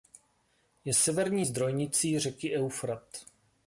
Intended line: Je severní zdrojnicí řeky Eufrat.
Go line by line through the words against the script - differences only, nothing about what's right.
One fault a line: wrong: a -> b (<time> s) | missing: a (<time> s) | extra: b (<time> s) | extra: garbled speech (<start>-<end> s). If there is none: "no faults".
no faults